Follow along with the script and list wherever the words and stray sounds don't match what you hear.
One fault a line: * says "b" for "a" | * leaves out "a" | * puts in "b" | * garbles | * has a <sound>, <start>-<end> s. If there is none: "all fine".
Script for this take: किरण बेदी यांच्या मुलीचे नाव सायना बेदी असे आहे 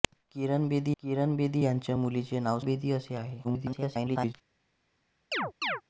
* puts in "किरण बेदी"
* leaves out "सायना"
* garbles
* has a chirp, 5.3-5.8 s